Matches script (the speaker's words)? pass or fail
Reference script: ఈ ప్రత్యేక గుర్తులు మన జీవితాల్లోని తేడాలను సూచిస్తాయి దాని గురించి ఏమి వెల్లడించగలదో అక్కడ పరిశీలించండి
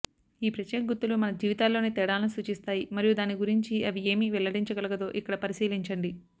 fail